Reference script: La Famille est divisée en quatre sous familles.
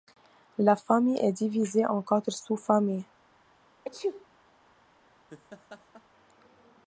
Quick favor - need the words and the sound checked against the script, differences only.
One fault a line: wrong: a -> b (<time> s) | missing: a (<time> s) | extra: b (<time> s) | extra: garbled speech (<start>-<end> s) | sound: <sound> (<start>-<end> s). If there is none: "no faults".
sound: sneeze (3.8-4.3 s)
sound: laugh (5.3-6.0 s)